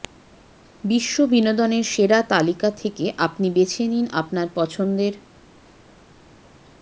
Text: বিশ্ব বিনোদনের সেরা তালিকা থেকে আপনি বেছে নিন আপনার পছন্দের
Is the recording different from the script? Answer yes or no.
no